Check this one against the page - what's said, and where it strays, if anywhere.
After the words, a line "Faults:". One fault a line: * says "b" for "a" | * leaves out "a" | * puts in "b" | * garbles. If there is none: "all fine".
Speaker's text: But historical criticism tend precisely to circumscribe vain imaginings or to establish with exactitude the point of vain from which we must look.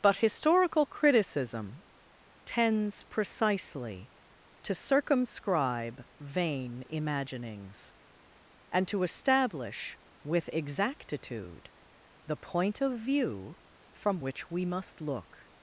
But historical criticism tends precisely to circumscribe vain imaginings and to establish with exactitude the point of view from which we must look.
Faults:
* says "tends" for "tend"
* says "and" for "or"
* says "view" for "vain"